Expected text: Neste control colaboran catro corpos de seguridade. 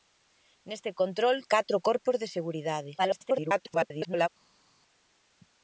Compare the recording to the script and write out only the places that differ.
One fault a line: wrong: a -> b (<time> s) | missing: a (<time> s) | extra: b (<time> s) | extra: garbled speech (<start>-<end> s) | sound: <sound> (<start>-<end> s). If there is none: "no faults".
missing: colaboran (1.4 s)
extra: garbled speech (3.0-4.3 s)